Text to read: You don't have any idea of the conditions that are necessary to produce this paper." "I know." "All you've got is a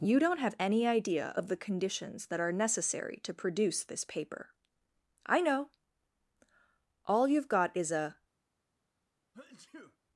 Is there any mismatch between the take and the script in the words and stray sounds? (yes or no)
yes